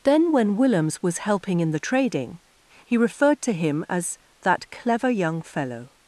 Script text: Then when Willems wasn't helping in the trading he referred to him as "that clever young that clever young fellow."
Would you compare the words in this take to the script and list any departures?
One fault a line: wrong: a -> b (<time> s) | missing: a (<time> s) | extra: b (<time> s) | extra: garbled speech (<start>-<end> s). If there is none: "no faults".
wrong: wasn't -> was (1.0 s)
missing: that clever young (5.4 s)